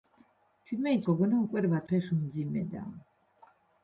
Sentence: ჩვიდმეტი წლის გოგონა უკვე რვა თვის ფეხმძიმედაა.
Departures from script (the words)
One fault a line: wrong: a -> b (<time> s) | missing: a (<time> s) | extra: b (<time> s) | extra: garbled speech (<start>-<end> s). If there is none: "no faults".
missing: წლის (1.0 s)
missing: თვის (1.9 s)